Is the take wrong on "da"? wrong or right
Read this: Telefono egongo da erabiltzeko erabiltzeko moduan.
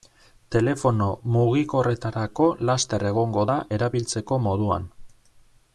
right